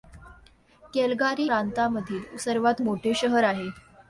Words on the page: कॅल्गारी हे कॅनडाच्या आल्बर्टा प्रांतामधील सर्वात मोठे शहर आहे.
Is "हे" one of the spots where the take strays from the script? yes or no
yes